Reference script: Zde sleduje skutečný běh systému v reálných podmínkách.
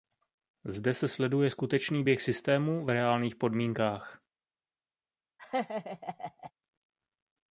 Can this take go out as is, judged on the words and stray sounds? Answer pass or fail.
fail